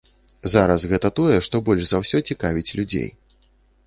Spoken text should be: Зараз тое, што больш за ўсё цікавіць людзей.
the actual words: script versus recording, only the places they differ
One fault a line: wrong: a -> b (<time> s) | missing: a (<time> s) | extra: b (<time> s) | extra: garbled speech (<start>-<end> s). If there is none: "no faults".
extra: гэта (0.9 s)